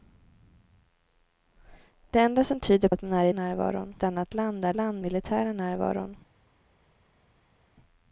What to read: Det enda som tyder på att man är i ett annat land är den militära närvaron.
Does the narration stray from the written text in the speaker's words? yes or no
yes